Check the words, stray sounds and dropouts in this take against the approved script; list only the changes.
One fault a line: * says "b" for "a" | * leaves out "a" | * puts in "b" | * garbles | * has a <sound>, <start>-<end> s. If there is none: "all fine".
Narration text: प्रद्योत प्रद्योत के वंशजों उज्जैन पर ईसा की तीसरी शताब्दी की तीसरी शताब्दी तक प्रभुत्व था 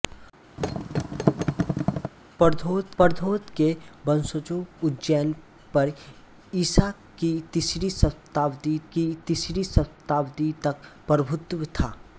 * has a thud, 0.6-2.1 s